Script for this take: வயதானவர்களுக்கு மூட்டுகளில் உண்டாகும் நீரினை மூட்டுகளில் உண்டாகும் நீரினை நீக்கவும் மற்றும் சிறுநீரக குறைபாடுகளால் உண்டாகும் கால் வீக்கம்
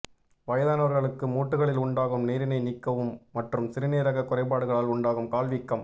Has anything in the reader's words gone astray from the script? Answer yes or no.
yes